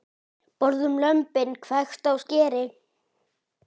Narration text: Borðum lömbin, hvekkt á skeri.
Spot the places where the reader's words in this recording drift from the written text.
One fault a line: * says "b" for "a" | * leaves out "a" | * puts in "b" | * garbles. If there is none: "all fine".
all fine